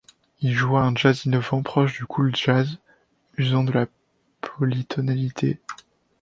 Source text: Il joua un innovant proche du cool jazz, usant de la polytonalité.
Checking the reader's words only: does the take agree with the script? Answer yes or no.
no